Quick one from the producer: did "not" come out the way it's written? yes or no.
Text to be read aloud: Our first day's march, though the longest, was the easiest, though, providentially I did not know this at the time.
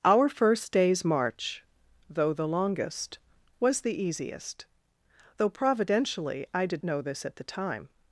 no